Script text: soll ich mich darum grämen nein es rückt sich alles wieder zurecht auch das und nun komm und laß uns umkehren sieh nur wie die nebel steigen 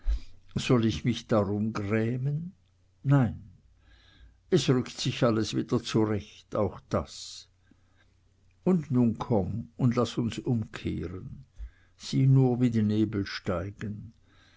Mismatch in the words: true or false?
false